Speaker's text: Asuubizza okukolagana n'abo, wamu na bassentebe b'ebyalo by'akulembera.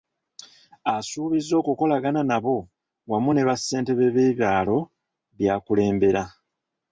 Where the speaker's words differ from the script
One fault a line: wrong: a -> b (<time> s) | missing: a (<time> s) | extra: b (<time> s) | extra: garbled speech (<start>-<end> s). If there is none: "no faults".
wrong: na -> ne (3.3 s)